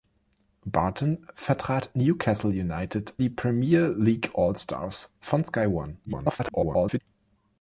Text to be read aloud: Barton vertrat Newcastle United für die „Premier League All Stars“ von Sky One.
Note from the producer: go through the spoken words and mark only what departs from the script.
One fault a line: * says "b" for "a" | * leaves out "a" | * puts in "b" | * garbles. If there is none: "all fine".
* leaves out "für"
* garbles